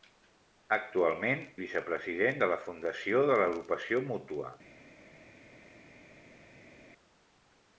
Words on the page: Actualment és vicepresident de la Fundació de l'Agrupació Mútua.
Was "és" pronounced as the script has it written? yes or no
no